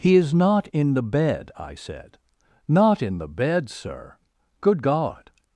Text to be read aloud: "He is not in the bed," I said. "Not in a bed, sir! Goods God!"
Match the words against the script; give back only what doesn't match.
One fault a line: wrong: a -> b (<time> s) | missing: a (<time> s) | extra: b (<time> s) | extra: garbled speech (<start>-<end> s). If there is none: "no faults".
wrong: a -> the (3.2 s)
wrong: Goods -> Good (4.6 s)